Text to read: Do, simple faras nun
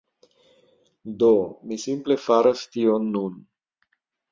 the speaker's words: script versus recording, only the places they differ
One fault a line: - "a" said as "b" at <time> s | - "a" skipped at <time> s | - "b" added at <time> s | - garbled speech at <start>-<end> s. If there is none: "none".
- "mi" added at 1.7 s
- "tion" added at 2.8 s